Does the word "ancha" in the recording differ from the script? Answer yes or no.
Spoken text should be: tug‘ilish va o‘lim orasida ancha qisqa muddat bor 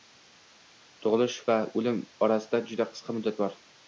yes